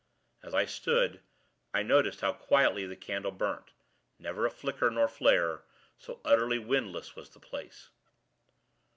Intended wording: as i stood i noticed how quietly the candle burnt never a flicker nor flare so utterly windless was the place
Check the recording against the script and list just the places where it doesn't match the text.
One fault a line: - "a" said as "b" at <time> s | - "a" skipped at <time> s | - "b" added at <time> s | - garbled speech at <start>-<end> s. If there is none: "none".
none